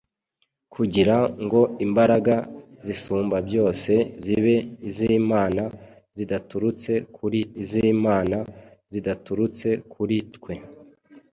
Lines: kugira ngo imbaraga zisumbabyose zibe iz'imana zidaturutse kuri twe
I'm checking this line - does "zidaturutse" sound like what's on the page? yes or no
yes